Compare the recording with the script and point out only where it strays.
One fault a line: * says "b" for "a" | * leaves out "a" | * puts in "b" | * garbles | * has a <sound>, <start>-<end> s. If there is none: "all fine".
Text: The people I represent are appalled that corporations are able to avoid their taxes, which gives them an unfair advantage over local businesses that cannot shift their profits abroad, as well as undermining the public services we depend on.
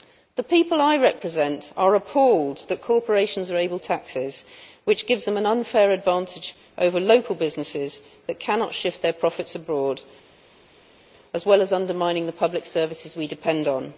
* leaves out "to avoid their"